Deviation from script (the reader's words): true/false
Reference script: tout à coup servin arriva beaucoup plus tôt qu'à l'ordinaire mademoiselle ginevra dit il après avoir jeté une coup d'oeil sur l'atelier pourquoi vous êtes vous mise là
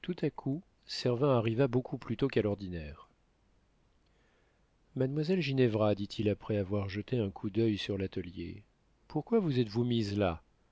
true